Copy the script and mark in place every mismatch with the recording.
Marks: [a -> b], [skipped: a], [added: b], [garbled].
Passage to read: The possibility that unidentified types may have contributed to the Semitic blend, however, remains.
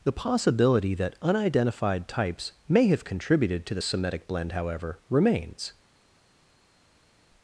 The possibility that unidentified types may have contributed to the Semitic blend, however, remains.